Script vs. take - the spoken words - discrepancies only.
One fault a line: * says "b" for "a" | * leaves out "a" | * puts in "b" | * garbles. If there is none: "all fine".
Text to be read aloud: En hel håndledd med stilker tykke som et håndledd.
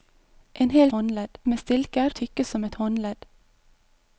all fine